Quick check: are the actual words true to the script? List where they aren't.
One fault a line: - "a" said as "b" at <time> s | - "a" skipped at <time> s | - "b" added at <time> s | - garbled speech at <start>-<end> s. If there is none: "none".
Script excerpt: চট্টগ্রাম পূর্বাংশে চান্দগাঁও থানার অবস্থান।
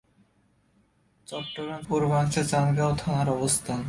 none